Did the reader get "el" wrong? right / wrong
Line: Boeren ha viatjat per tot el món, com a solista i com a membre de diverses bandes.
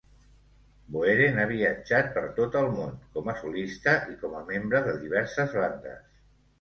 right